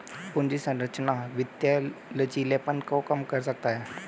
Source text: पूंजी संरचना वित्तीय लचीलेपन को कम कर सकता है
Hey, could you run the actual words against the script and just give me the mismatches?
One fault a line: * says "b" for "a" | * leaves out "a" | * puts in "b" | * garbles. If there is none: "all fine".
all fine